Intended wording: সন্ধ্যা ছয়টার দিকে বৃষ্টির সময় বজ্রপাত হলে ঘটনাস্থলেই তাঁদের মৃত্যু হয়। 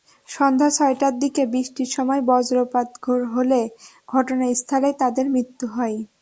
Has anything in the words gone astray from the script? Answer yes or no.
no